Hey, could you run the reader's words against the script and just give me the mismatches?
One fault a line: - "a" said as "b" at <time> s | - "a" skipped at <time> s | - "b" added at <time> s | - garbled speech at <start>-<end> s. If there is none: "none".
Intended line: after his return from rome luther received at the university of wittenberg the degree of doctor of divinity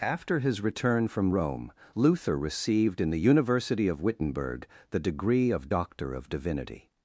- "at" said as "in" at 3.0 s